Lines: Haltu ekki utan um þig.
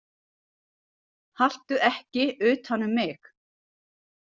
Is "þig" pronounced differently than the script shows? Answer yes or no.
yes